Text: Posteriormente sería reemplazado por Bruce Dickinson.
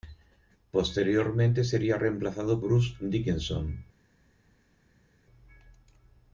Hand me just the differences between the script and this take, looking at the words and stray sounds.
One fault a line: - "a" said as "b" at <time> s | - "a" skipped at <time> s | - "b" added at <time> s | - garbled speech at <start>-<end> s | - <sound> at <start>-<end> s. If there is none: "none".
- "por" skipped at 2.6 s